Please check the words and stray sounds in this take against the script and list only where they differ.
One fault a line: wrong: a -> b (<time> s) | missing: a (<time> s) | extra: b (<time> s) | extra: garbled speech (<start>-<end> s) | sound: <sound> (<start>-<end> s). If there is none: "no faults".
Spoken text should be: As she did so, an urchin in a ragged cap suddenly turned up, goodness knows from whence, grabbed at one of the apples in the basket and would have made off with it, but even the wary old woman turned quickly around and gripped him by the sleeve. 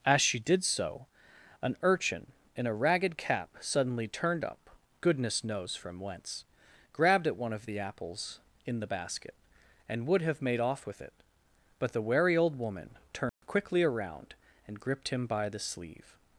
missing: even (11.9 s)
sound: dropout (13.3-13.4 s)